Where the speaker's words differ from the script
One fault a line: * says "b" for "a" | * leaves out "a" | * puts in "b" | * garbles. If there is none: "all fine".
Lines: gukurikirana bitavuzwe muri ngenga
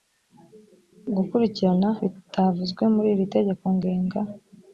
* puts in "iri tegeko"